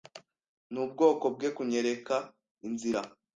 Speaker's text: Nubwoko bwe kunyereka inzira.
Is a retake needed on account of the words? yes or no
no